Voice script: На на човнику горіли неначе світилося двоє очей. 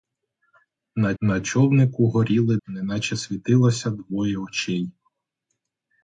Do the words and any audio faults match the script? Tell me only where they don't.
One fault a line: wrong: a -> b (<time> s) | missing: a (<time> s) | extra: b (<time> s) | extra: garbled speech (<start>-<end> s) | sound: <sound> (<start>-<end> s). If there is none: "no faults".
no faults